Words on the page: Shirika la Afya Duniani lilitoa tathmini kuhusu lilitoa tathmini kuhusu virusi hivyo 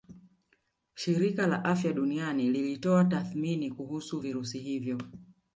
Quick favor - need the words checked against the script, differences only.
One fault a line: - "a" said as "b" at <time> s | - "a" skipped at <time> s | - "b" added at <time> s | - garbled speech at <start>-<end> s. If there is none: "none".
- "lilitoa tathmini kuhusu" skipped at 4.2 s